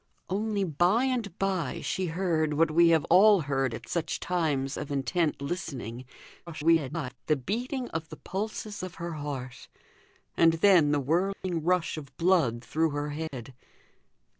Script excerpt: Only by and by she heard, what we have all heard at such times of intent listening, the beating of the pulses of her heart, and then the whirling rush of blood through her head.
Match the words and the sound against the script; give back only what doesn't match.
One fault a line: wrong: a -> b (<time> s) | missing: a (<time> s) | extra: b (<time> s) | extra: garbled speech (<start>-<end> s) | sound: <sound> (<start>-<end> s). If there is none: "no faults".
extra: garbled speech (6.5-7.2 s)
sound: dropout (11.3-11.4 s)
sound: dropout (13.3-13.3 s)